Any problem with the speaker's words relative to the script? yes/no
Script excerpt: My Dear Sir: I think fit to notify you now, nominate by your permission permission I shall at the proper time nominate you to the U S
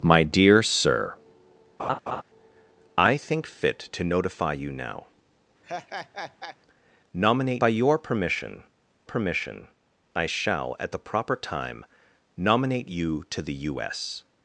no